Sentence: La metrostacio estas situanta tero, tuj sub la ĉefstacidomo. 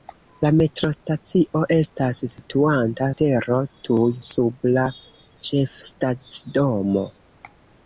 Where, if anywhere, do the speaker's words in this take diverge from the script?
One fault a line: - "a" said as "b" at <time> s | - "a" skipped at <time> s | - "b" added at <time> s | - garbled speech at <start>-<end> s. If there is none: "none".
none